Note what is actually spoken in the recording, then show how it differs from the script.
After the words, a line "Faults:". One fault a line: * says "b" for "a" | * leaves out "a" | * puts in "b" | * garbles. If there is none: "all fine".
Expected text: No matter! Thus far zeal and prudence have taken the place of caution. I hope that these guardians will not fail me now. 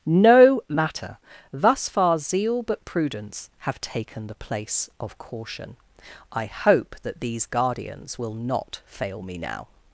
No matter! Thus far zeal but prudence have taken the place of caution. I hope that these guardians will not fail me now.
Faults:
* says "but" for "and"